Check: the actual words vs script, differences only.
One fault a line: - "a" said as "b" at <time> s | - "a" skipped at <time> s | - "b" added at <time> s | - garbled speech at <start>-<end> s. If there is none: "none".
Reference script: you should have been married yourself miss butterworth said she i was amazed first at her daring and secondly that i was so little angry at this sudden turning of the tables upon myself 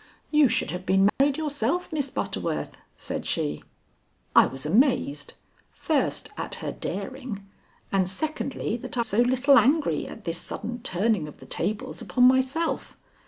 - "was" skipped at 9.1 s